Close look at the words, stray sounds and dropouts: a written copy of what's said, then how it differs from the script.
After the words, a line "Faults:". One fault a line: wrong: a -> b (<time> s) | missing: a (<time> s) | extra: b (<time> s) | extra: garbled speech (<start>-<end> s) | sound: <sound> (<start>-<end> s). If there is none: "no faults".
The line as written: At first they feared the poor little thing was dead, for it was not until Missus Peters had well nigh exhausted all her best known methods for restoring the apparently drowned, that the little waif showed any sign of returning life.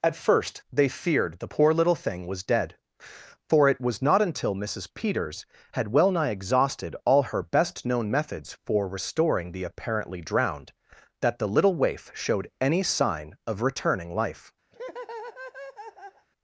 At first they feared the poor little thing was dead, for it was not until Missus Peters had well nigh exhausted all her best known methods for restoring the apparently drowned, that the little waif showed any sign of returning life.
Faults:
sound: laugh (14.7-16.3 s)